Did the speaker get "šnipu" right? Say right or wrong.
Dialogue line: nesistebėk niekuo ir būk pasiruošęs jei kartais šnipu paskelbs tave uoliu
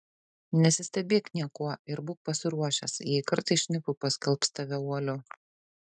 right